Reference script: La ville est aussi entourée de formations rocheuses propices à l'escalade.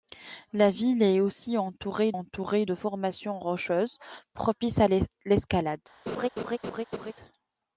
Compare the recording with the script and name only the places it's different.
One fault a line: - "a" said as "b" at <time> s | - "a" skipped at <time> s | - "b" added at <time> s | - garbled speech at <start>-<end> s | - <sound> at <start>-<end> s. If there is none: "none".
- "entourée" added at 2.1 s
- laugh at 6.1-7.1 s